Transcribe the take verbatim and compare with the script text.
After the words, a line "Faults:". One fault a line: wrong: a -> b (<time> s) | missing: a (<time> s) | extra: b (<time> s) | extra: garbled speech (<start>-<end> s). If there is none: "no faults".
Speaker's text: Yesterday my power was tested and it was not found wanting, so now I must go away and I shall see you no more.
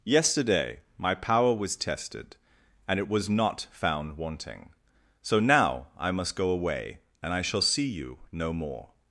Yesterday my power was tested and it was not found wanting, so now I must go away and I shall see you no more.
Faults:
no faults